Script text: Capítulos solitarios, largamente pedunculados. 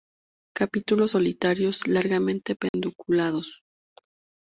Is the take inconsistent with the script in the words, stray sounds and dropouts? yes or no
yes